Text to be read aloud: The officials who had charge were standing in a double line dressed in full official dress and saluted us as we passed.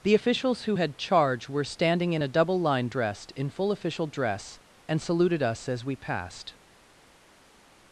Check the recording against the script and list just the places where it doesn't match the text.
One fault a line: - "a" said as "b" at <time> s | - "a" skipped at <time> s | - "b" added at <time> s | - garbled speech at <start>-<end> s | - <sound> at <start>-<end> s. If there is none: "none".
none